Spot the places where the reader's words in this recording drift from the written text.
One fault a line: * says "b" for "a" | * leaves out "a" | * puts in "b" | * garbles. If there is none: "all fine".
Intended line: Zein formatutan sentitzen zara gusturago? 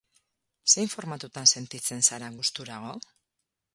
all fine